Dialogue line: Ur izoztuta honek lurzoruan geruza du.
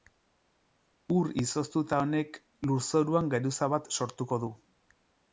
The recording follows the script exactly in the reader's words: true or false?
false